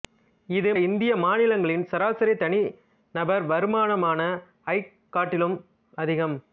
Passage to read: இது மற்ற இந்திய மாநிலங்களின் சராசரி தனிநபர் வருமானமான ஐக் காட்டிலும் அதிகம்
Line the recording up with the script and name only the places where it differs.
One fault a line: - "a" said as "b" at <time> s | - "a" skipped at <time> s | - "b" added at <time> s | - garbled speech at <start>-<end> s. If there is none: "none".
- "மற்ற" skipped at 0.7 s